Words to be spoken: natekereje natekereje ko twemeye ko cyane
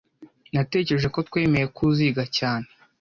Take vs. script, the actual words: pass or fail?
fail